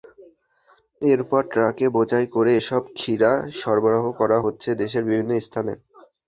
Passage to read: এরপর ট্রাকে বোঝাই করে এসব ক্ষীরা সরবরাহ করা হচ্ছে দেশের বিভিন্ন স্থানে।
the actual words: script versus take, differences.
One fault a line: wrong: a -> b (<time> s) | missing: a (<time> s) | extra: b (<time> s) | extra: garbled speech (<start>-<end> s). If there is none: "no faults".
no faults